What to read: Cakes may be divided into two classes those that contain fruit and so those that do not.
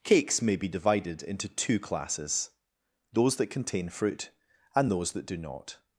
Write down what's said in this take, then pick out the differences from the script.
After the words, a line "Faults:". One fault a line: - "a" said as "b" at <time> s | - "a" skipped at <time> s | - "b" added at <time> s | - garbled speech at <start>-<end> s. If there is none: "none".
Cakes may be divided into two classes those that contain fruit and those that do not.
Faults:
- "so" skipped at 4.9 s